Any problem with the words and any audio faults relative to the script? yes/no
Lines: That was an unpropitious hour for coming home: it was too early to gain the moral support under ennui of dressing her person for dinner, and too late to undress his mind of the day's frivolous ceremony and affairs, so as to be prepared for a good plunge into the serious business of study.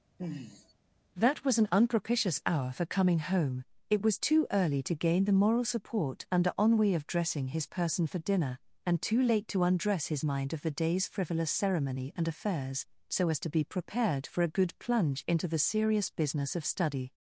yes